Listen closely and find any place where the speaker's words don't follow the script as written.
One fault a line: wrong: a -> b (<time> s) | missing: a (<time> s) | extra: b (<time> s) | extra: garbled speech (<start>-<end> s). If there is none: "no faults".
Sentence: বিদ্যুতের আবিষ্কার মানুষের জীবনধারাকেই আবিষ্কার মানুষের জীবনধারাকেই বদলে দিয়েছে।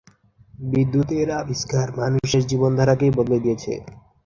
missing: আবিষ্কার মানুষের জীবনধারাকেই (3.1 s)